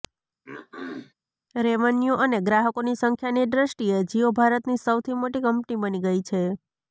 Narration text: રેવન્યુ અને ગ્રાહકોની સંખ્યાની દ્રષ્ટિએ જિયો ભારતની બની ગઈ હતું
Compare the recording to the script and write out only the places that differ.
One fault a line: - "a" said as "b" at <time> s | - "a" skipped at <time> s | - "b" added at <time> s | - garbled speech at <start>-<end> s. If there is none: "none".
- "સૌથી મોટી કંપની" added at 4.8 s
- "હતું" said as "છે" at 6.2 s